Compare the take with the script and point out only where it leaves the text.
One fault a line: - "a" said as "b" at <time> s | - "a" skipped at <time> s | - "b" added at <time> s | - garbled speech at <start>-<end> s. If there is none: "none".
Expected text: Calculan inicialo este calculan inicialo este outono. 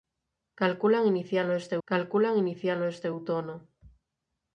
none